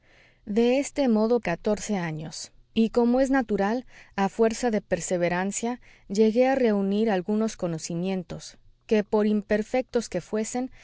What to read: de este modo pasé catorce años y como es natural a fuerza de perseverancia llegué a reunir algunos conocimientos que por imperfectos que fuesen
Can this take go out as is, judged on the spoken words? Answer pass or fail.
fail